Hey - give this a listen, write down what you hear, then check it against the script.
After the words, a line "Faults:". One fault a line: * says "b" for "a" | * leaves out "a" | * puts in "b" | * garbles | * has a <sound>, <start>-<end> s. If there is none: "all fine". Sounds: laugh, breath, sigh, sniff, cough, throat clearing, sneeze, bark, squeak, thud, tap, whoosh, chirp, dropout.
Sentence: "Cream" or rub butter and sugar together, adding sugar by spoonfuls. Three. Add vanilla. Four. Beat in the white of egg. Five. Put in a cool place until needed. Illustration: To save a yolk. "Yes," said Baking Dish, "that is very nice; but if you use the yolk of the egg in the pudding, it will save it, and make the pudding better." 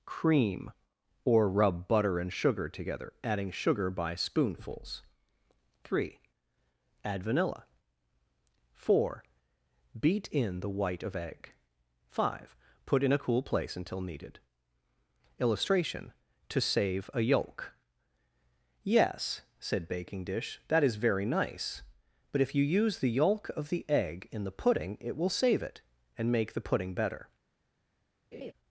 "Cream" or rub butter and sugar together, adding sugar by spoonfuls. Three. Add vanilla. Four. Beat in the white of egg. Five. Put in a cool place until needed. Illustration: To save a yolk. "Yes," said Baking Dish, "that is very nice; but if you use the yolk of the egg in the pudding, it will save it, and make the pudding better."
Faults:
* has a laugh, 28.3-28.5 s